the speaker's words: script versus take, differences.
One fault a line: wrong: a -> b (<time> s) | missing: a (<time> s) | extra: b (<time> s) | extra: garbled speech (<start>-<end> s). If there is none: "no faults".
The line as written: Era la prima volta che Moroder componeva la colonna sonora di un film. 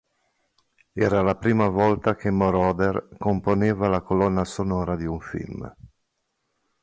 no faults